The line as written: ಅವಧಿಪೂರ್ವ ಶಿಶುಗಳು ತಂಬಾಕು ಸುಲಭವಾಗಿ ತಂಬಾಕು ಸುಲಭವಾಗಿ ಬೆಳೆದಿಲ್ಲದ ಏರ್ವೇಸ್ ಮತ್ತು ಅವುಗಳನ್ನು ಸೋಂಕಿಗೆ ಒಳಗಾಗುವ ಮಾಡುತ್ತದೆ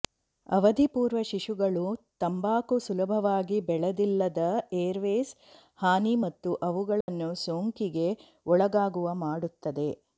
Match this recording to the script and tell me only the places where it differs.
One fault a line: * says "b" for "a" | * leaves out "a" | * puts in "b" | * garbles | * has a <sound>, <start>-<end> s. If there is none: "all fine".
* leaves out "ತಂಬಾಕು ಸುಲಭವಾಗಿ"
* puts in "ಹಾನಿ"
* has a dropout, 7.0-7.1 s